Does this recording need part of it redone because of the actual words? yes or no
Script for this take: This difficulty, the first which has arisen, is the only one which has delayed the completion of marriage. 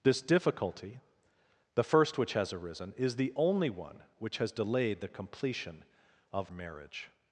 no